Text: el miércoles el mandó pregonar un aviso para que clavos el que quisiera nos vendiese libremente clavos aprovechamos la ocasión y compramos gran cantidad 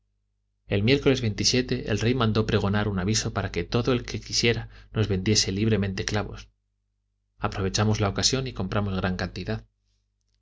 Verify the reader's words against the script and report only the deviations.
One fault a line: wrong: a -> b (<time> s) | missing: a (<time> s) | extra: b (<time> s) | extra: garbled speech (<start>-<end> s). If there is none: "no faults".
extra: rey (2.0 s)
wrong: clavos -> todo (3.6 s)